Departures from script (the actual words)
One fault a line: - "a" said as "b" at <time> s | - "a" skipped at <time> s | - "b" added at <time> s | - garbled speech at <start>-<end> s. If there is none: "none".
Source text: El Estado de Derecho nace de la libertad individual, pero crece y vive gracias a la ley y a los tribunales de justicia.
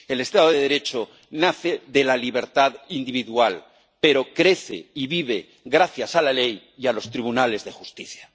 none